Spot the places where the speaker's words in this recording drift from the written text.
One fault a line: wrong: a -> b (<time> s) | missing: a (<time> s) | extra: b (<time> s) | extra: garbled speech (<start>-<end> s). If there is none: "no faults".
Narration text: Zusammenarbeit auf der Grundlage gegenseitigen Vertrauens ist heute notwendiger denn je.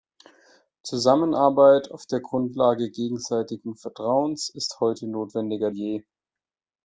missing: denn (5.7 s)